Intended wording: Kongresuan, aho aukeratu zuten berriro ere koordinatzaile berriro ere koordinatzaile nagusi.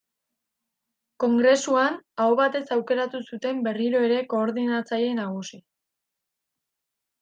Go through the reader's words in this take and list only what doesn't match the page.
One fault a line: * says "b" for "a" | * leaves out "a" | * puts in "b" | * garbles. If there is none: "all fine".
* puts in "batez"
* leaves out "berriro ere koordinatzaile"